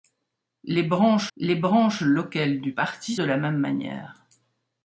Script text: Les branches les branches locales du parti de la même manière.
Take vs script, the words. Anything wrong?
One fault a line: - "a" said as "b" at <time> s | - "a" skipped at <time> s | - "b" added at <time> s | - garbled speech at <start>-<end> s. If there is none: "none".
none